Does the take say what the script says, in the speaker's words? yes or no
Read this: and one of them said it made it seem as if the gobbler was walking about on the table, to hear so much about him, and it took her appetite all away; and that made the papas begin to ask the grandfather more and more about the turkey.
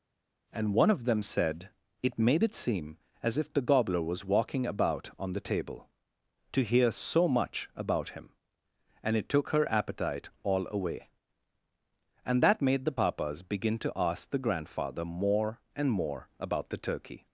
yes